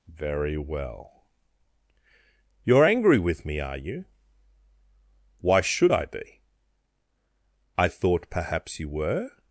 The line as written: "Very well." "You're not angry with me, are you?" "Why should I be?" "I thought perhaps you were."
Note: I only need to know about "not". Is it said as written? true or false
false